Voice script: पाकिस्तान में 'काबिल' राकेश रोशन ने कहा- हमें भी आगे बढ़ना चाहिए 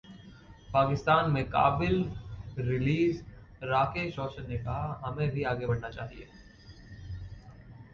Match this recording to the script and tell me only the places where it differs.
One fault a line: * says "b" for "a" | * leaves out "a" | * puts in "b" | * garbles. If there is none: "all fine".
* puts in "रिलीज"